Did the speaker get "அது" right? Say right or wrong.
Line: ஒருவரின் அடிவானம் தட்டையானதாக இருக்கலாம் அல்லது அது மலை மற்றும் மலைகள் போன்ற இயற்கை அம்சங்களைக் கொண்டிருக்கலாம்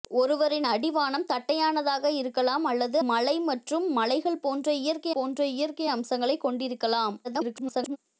wrong